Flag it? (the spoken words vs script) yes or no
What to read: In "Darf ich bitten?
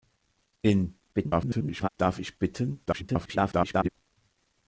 yes